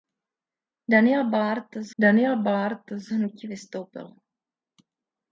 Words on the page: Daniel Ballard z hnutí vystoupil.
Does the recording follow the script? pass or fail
fail